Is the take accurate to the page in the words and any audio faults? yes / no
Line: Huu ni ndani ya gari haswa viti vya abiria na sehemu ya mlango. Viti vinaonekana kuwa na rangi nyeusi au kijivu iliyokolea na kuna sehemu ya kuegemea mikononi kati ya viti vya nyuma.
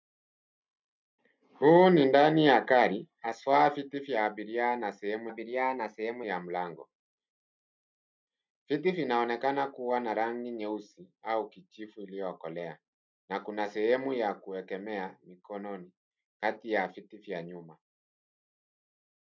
no